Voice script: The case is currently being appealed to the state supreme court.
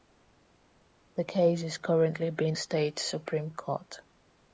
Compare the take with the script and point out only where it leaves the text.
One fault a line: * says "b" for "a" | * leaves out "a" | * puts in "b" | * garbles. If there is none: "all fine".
* leaves out "appealed to the"